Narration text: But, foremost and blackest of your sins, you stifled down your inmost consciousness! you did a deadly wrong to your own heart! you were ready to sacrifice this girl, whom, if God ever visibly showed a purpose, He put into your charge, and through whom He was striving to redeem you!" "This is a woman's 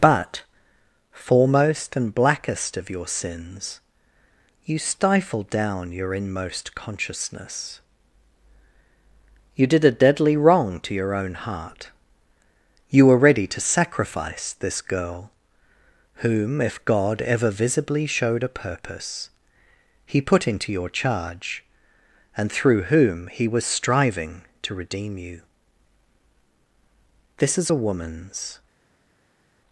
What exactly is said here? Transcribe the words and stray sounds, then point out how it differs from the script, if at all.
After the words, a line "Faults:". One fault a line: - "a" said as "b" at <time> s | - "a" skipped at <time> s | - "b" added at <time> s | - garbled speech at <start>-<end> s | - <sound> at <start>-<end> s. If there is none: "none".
But, foremost and blackest of your sins, you stifled down your inmost consciousness! you did a deadly wrong to your own heart! you were ready to sacrifice this girl, whom, if God ever visibly showed a purpose, He put into your charge, and through whom He was striving to redeem you!" "This is a woman's
Faults:
none